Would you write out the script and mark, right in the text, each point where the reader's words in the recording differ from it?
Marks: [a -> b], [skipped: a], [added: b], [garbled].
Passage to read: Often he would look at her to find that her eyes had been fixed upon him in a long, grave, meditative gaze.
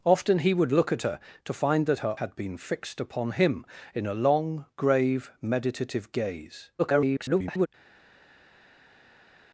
Often he would look at her to find that her [skipped: eyes] had been fixed upon him in a long, grave, meditative gaze. [garbled]